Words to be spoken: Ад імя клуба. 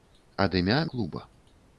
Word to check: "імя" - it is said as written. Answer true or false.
true